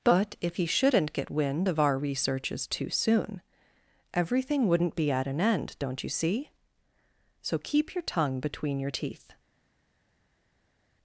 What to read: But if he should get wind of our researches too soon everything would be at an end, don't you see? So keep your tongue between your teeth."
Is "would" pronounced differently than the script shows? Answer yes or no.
yes